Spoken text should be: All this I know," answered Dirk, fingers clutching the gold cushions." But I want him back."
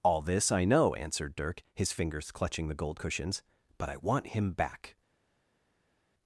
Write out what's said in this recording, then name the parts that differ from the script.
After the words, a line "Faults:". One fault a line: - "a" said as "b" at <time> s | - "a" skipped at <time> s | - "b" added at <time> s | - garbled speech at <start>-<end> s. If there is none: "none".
All this I know," answered Dirk, his fingers clutching the gold cushions." But I want him back."
Faults:
- "his" added at 1.8 s